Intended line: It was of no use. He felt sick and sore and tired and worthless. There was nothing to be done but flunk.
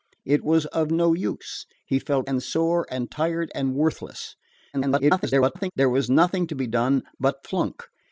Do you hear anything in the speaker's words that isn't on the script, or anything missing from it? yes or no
yes